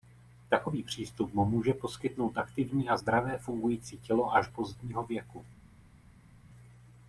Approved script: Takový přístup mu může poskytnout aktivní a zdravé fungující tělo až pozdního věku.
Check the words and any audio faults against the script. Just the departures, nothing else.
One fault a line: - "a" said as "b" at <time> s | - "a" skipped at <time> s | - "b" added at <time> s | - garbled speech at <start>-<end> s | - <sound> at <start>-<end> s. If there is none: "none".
none